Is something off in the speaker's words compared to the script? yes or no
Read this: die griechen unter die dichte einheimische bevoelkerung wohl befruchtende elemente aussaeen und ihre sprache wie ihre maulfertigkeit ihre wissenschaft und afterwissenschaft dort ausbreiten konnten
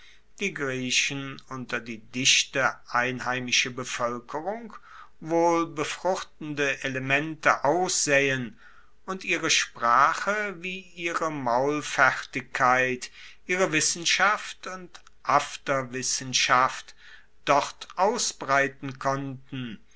no